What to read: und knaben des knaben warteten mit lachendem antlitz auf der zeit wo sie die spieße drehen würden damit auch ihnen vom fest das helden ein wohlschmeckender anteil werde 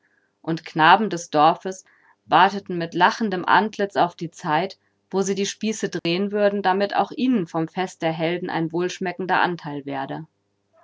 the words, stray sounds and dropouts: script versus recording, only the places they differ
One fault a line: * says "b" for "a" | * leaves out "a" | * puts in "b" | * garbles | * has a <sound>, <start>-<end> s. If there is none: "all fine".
* says "dorfes" for "knaben"
* says "die" for "der"
* has a dropout, 6.0-6.1 s
* says "der" for "das"